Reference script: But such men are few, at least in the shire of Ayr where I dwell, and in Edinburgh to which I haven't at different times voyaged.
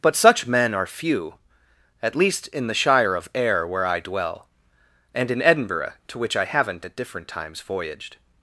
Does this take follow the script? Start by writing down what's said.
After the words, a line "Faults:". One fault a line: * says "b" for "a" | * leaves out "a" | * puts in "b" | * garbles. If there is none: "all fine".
But such men are few, at least in the shire of Ayr where I dwell, and in Edinburgh to which I haven't at different times voyaged.
Faults:
all fine